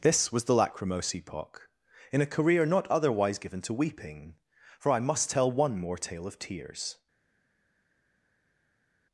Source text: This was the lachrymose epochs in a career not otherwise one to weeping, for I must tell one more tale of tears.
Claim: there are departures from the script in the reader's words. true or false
true